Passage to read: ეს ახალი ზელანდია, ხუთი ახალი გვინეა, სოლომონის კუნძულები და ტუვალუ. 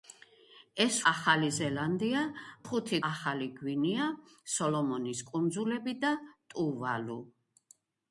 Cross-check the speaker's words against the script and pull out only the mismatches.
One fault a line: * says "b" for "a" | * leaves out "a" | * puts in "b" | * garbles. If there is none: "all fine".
all fine